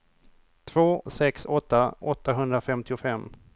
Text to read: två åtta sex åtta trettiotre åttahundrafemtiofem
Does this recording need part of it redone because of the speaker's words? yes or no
yes